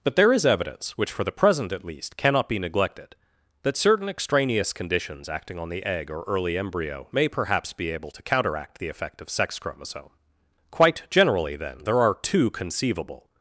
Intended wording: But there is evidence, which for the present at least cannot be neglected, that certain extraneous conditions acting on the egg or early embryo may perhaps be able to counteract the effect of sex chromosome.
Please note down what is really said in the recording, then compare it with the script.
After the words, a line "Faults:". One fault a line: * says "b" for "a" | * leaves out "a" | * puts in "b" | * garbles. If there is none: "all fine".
But there is evidence, which for the present at least cannot be neglected, that certain extraneous conditions acting on the egg or early embryo may perhaps be able to counteract the effect of sex chromosome. "Quite generally, then, there are two conceivable
Faults:
* puts in "Quite generally then there are two conceivable"